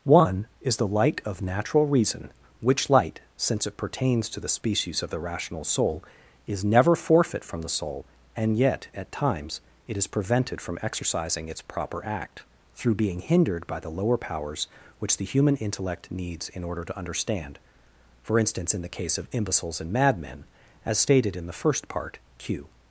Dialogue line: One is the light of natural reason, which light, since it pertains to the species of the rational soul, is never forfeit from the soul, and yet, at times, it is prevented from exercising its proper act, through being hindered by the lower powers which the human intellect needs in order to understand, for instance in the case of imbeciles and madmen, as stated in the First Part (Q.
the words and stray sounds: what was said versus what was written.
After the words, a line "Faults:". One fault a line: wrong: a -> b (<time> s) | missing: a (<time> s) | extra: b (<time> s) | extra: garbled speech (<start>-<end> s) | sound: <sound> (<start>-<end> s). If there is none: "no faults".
One is the light of natural reason, which light, since it pertains to the species of the rational soul, is never forfeit from the soul, and yet, at times, it is prevented from exercising its proper act, through being hindered by the lower powers which the human intellect needs in order to understand, for instance in the case of imbeciles and madmen, as stated in the First Part (Q.
Faults:
no faults